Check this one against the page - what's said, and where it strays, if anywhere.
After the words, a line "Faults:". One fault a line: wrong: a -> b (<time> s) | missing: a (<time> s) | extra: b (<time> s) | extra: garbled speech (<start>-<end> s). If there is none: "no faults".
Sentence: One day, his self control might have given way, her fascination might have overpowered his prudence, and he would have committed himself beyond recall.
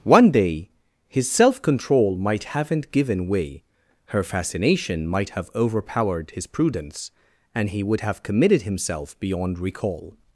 One day, his self control might haven't given way, her fascination might have overpowered his prudence, and he would have committed himself beyond recall.
Faults:
wrong: have -> haven't (2.5 s)